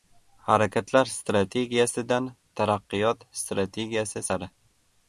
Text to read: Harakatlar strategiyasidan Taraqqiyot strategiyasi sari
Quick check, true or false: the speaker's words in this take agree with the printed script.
true